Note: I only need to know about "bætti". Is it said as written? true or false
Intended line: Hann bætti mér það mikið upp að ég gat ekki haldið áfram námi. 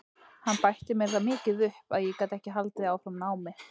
true